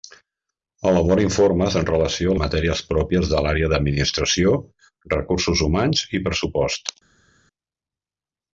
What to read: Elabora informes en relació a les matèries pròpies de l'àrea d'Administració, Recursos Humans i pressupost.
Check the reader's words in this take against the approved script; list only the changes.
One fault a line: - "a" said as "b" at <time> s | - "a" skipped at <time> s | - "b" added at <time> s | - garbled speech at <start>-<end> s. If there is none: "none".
- "les" skipped at 2.4 s